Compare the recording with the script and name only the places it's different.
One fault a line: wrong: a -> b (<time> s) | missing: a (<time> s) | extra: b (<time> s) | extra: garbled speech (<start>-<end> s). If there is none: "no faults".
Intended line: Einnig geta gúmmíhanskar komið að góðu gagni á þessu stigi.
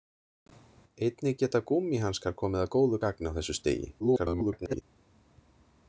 extra: garbled speech (4.0-4.8 s)